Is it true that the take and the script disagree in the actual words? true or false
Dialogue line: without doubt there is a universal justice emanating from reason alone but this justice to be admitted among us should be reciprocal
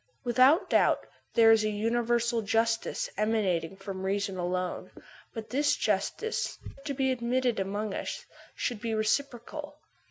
false